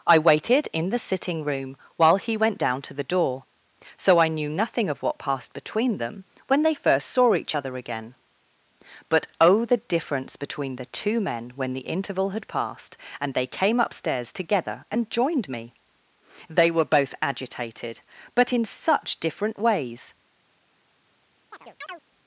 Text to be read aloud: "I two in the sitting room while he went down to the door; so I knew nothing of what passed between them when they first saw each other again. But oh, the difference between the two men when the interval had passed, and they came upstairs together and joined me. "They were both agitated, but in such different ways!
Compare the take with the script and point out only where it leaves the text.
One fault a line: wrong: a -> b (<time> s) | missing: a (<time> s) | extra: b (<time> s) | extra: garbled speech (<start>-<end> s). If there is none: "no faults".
wrong: two -> waited (0.2 s)